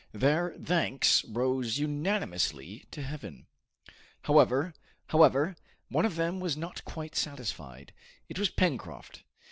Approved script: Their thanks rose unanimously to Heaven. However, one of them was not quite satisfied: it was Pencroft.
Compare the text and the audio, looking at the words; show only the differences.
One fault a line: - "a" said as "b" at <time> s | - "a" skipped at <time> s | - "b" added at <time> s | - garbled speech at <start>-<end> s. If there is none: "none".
- "however" added at 5.1 s